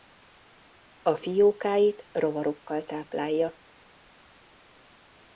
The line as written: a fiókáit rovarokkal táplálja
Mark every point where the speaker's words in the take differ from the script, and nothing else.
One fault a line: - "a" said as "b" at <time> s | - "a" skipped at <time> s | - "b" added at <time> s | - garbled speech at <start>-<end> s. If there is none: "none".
none